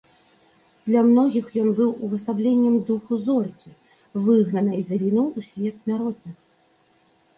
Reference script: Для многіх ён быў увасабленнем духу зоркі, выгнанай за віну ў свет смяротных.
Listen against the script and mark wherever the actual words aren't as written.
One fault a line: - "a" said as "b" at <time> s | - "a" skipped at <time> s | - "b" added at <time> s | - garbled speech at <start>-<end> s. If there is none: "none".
none